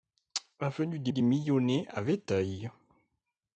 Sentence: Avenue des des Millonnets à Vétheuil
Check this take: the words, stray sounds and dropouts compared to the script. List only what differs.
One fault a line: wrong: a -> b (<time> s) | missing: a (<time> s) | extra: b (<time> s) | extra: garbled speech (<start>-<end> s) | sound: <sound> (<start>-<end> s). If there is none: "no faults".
no faults